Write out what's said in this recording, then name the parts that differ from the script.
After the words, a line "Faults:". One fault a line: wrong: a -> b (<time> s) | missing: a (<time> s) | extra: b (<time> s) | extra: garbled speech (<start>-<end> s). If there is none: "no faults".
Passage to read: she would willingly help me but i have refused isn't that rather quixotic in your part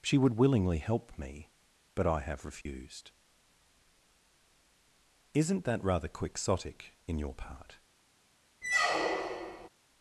she would willingly help me but i have refused isn't that rather quixotic in your part
Faults:
no faults